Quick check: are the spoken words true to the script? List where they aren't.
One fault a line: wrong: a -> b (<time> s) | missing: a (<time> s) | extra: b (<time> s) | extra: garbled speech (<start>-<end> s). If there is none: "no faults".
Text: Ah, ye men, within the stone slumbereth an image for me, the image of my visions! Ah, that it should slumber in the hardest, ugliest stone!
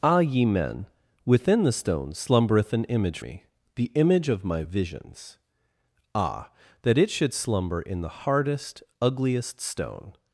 missing: for (3.2 s)